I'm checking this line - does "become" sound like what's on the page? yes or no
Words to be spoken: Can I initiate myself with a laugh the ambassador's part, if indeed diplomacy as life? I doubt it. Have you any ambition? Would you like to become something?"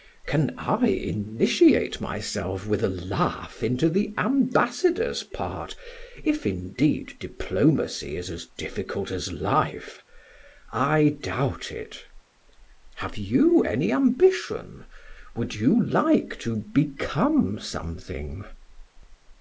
yes